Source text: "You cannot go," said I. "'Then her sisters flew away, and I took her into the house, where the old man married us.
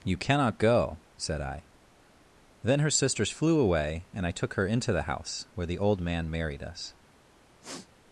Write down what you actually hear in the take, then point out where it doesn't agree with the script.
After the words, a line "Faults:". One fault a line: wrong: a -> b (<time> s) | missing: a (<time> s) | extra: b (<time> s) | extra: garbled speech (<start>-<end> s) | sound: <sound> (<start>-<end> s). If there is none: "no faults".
"You cannot go," said I. "'Then her sisters flew away, and I took her into the house, where the old man married us.
Faults:
sound: sniff (7.6-7.9 s)